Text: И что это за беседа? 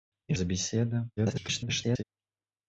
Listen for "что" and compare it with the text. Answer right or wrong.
wrong